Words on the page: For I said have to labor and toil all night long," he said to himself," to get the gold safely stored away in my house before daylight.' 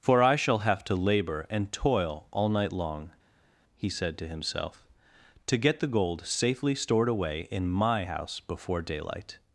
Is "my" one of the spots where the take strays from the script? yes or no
no